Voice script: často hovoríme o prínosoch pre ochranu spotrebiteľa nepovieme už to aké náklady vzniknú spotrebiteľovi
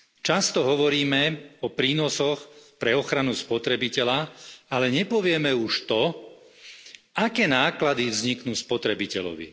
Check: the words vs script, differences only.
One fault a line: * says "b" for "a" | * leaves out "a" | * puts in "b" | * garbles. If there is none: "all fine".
* puts in "ale"